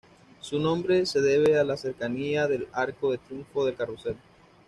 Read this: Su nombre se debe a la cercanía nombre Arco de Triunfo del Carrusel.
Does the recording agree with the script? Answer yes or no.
no